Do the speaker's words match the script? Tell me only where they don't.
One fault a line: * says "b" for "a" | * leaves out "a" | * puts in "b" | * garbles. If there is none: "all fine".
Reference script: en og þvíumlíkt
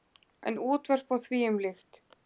* puts in "útvörp"